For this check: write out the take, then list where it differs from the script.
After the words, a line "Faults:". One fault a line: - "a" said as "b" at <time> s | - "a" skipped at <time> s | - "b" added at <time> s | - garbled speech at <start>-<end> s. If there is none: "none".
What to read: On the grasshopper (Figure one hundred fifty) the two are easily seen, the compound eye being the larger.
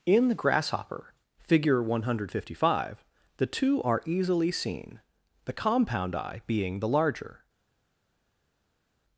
In the grasshopper (Figure one hundred fifty five) the two are easily seen, the compound eye being the larger.
Faults:
- "On" said as "In" at 0.1 s
- "five" added at 2.7 s